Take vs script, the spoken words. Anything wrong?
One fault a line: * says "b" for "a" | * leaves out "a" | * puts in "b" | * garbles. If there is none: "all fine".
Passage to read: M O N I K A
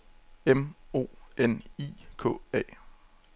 all fine